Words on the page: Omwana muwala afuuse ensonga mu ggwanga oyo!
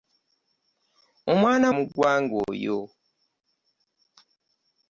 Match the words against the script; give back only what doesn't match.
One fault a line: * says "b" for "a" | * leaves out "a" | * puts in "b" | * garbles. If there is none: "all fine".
* leaves out "muwala afuuse ensonga"